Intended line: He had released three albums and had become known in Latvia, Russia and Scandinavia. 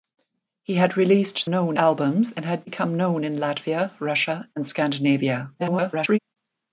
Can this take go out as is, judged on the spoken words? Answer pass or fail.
fail